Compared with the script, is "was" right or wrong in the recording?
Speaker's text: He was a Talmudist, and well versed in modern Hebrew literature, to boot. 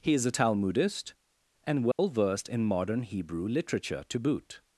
wrong